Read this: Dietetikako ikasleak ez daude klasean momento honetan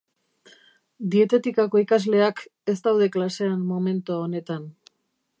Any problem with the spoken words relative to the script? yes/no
no